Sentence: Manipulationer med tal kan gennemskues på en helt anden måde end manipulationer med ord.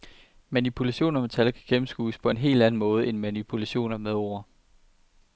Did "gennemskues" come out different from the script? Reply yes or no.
no